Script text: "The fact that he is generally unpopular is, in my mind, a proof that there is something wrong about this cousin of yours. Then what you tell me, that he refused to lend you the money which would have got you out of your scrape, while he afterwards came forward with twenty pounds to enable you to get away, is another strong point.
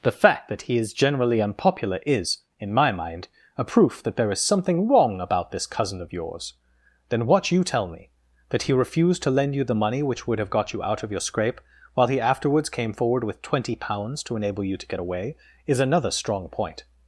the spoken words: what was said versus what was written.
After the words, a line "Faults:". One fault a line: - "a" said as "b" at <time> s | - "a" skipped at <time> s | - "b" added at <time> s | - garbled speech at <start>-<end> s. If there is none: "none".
"The fact that he is generally unpopular is, in my mind, a proof that there is something wrong about this cousin of yours. Then what you tell me, that he refused to lend you the money which would have got you out of your scrape, while he afterwards came forward with twenty pounds to enable you to get away, is another strong point.
Faults:
none